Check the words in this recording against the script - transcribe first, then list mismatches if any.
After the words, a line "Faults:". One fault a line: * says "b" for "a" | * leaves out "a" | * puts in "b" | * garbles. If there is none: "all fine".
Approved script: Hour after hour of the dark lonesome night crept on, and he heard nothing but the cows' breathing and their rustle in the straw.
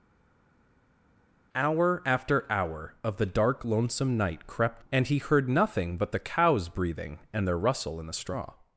Hour after hour of the dark lonesome night crept and he heard nothing but the cows' breathing and their rustle in the straw.
Faults:
* leaves out "on"